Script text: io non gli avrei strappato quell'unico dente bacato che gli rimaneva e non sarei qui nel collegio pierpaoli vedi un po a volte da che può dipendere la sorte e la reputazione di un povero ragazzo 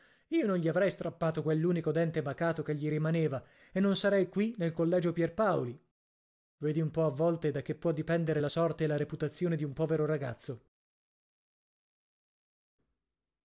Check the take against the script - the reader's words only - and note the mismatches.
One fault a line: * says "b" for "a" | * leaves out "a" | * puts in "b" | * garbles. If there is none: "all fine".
all fine